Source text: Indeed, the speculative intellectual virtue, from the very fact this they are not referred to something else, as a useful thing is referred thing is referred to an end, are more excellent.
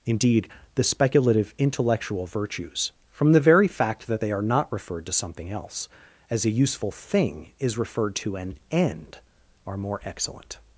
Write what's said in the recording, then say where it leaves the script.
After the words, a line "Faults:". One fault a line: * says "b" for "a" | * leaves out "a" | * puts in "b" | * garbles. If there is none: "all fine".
Indeed, the speculative intellectual virtues, from the very fact that they are not referred to something else, as a useful thing is referred to an end, are more excellent.
Faults:
* says "virtues" for "virtue"
* says "that" for "this"
* leaves out "thing is referred"